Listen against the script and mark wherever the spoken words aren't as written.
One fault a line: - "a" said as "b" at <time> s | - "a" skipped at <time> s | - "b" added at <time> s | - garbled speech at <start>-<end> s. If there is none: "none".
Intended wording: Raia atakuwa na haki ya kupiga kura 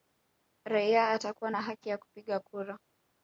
none